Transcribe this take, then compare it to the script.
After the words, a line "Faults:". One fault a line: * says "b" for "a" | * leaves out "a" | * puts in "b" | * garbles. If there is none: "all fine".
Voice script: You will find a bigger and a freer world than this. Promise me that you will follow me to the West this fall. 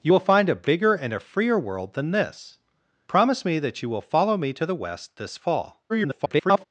You will find a bigger and a freer world than this. Promise me that you will follow me to the West this fall. [garbled]
Faults:
* garbles